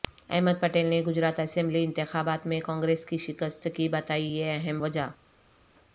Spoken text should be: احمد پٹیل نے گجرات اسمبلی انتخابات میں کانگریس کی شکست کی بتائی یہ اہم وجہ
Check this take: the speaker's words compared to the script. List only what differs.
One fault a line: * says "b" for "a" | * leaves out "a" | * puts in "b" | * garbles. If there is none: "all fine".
all fine